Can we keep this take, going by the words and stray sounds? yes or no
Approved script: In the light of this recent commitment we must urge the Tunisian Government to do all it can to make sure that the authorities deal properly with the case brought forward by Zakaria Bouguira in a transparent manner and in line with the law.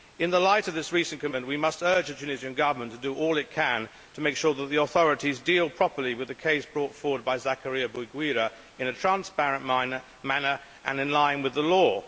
yes